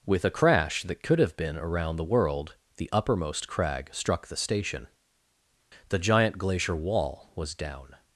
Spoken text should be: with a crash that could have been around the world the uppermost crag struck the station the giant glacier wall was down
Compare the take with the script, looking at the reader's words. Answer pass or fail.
pass